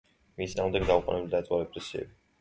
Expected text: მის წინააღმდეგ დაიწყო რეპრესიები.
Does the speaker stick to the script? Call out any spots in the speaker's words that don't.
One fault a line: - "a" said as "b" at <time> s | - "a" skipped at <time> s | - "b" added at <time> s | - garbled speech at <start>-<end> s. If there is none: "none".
- "დაუყოვნებლივ" added at 0.9 s